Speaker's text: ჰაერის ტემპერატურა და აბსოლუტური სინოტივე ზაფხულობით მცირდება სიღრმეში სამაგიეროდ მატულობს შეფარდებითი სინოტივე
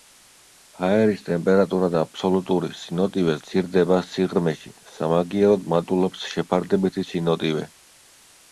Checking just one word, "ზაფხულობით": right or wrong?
wrong